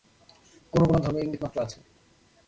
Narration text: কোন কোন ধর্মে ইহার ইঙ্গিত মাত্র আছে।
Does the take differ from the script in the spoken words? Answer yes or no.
yes